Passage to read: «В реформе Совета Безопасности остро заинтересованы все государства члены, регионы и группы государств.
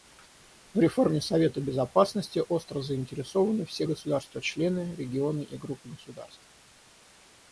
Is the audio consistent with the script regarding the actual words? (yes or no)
yes